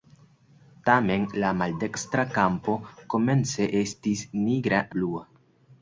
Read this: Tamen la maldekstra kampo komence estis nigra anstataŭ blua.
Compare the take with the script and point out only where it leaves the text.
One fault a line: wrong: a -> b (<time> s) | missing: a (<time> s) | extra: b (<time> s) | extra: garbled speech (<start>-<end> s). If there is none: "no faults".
missing: anstataŭ (4.8 s)